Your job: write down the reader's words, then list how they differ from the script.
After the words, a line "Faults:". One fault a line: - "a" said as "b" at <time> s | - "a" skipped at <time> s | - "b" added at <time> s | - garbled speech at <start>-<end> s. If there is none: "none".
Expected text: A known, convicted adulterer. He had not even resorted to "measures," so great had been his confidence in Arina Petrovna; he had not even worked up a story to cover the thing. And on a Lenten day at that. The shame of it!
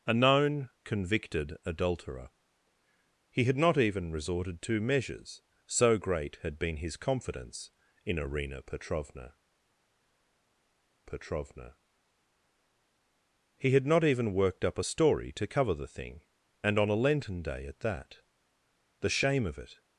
A known, convicted adulterer. He had not even resorted to "measures," so great had been his confidence in Arina Petrovna Petrovna; he had not even worked up a story to cover the thing. And on a Lenten day at that. The shame of it!
Faults:
- "Petrovna" added at 11.0 s